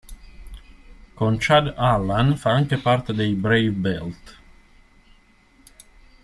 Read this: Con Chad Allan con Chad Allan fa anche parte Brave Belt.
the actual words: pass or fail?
fail